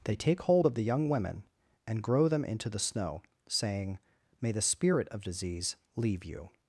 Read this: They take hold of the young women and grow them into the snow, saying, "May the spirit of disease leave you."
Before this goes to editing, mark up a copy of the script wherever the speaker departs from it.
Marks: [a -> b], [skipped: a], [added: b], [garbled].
They take hold of the young women and grow them into the snow, saying, "May the spirit of disease leave you."